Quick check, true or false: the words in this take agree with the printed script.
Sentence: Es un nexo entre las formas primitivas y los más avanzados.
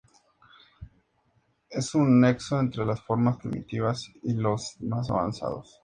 true